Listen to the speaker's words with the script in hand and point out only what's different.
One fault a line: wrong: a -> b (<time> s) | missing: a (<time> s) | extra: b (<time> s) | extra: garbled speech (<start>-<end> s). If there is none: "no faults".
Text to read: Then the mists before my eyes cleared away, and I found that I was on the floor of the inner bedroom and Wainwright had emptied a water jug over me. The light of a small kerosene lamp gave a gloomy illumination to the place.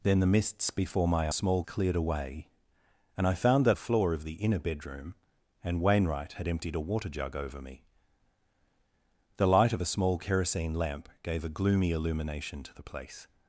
wrong: eyes -> small (1.3 s)
missing: I was on (3.8 s)